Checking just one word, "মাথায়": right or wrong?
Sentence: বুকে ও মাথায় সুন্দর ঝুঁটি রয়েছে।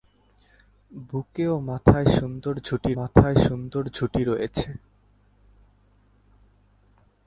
right